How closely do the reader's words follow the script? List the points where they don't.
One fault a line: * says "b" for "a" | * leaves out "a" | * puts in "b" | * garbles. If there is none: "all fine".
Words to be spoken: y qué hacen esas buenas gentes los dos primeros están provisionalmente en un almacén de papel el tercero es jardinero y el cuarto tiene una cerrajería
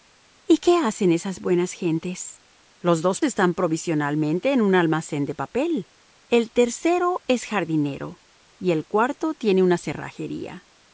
* leaves out "primeros"